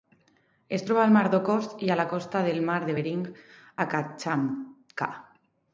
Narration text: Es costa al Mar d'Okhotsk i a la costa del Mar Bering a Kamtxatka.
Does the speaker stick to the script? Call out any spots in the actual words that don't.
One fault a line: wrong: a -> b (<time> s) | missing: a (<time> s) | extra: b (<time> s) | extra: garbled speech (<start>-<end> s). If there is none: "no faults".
wrong: costa -> troba (0.9 s)
extra: de (2.9 s)